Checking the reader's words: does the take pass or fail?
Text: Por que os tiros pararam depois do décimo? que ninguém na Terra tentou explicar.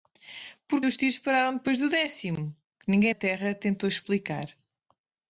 fail